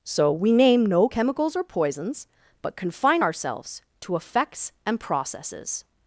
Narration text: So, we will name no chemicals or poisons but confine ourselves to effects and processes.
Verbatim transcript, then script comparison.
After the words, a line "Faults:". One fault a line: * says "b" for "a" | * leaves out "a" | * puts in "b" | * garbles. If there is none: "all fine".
So, we name no chemicals or poisons but confine ourselves to effects and processes.
Faults:
* leaves out "will"